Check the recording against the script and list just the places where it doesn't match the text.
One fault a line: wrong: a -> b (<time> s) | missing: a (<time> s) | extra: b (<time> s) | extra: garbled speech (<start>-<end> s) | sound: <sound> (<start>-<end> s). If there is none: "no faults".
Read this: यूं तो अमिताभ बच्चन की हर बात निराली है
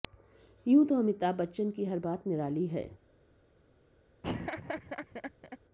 sound: laugh (4.2-5.6 s)